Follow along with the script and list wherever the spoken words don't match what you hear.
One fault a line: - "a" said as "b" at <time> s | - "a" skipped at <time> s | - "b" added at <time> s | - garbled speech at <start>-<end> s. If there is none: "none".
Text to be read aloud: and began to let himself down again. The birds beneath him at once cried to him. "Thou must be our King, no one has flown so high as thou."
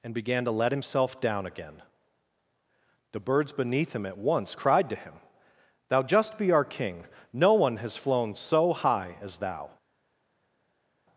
- "must" said as "just" at 6.0 s